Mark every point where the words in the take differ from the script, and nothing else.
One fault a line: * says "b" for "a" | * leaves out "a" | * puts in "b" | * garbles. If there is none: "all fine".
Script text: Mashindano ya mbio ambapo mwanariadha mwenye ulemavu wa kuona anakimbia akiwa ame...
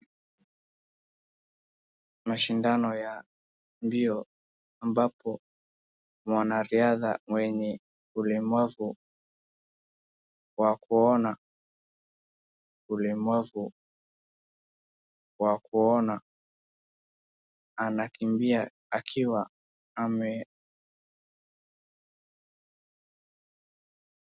* puts in "ulemavu wa kuona"